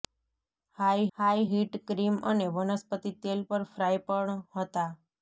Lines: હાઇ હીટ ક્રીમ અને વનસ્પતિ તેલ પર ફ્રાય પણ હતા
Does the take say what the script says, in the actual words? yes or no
no